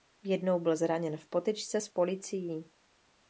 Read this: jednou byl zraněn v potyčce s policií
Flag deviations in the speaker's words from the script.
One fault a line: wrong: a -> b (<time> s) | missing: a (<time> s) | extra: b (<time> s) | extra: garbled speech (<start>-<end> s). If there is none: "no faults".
no faults